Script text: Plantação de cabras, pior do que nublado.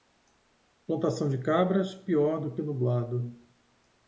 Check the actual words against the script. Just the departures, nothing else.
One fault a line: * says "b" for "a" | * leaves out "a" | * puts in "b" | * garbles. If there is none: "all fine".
all fine